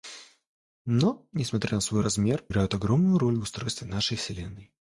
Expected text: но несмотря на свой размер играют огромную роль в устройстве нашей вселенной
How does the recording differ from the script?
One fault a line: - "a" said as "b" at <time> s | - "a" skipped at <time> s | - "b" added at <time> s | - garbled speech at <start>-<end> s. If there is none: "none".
none